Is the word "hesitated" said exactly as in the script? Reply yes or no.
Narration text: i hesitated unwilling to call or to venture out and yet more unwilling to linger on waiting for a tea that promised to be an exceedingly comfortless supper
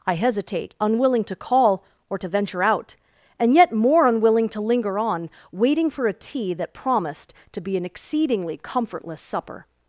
no